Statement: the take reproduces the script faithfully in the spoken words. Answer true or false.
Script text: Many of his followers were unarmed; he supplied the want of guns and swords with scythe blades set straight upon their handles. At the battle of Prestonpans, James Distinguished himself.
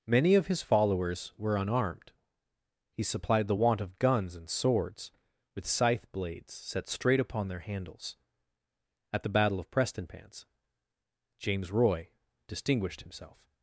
false